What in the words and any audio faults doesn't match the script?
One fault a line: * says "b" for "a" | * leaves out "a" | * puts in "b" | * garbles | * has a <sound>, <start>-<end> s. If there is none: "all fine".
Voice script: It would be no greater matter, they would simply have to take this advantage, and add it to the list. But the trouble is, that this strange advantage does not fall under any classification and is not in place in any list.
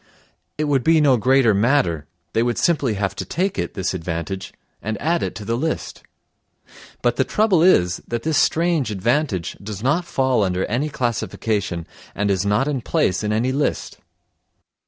* puts in "it"